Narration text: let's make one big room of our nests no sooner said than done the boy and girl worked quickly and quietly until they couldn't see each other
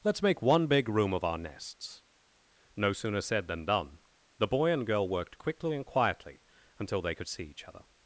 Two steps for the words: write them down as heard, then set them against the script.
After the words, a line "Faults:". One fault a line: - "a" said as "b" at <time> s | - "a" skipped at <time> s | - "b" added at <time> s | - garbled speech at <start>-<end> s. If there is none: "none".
let's make one big room of our nests no sooner said than done the boy and girl worked quickly and quietly until they could see each other
Faults:
- "couldn't" said as "could" at 7.1 s